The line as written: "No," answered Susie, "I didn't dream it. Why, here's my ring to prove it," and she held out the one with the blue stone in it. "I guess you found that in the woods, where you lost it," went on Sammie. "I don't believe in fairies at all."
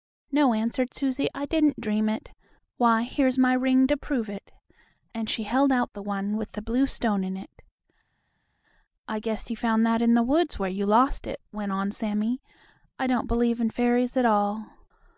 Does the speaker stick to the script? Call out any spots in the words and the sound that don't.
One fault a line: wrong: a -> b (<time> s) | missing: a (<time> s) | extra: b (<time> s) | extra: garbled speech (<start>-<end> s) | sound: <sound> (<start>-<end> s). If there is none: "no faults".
no faults